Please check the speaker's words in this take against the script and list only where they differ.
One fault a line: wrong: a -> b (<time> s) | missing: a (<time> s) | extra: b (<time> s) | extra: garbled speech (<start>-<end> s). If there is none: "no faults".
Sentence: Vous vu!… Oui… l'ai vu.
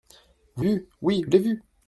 no faults